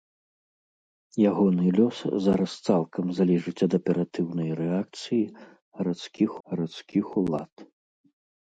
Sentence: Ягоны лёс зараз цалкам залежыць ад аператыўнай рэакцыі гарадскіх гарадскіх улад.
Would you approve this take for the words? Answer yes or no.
yes